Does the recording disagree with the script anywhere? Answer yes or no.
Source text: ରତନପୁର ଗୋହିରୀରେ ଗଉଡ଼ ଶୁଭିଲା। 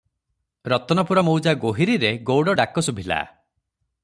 yes